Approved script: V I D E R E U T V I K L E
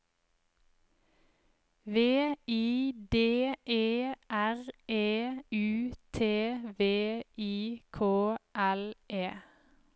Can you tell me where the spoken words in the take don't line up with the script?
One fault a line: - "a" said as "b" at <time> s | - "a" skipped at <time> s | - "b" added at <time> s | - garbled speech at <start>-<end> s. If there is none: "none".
none